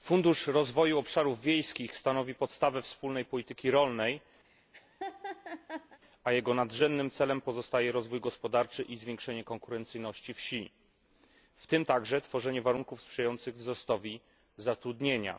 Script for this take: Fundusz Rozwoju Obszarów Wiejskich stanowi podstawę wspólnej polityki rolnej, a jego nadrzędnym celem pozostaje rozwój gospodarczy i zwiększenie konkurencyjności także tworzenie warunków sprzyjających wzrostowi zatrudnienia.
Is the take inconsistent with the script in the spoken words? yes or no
yes